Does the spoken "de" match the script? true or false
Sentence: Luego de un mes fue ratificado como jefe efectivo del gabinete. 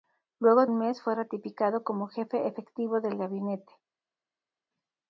false